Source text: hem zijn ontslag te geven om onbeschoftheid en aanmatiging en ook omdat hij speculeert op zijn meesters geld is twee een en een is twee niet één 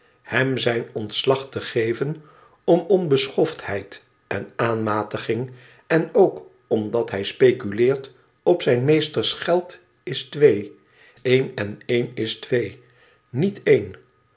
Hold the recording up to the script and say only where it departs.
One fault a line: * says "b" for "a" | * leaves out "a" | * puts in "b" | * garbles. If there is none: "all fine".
all fine